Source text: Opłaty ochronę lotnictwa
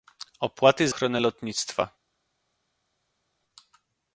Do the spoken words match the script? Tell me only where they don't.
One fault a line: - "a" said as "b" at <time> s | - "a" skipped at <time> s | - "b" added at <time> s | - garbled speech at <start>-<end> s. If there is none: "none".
none